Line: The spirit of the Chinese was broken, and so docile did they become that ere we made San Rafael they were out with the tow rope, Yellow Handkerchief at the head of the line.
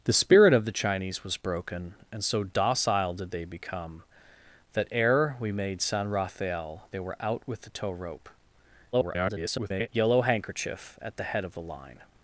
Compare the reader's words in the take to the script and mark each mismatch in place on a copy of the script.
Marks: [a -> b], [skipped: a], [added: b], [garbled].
The spirit of the Chinese was broken, and so docile did they become that ere we made San Rafael they were out with the tow rope, [garbled] Yellow Handkerchief at the head of the line.